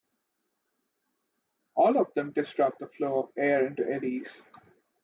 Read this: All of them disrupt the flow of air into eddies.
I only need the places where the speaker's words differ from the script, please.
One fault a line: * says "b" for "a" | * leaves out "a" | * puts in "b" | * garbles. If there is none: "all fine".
all fine